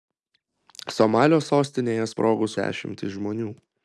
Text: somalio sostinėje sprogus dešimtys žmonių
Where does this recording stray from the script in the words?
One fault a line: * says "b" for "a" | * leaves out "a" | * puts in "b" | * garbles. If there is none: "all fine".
all fine